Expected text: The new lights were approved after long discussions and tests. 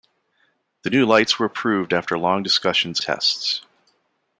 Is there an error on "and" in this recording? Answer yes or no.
yes